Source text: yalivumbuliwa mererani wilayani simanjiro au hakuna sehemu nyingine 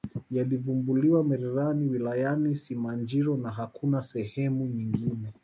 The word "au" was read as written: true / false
false